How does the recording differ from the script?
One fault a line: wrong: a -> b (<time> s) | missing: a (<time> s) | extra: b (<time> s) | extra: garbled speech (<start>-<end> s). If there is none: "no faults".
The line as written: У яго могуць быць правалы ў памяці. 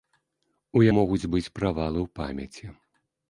missing: яго (0.8 s)